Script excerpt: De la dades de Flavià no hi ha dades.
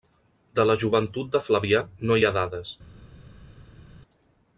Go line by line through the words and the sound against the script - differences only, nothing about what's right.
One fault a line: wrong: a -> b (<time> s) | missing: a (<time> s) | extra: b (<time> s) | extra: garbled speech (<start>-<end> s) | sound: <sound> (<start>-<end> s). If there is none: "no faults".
wrong: dades -> joventut (0.8 s)